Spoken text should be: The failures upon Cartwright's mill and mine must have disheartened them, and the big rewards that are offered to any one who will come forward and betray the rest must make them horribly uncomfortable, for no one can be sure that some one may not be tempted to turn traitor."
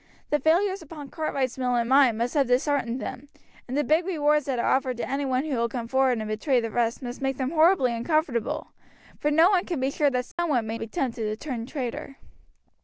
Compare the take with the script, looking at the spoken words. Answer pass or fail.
fail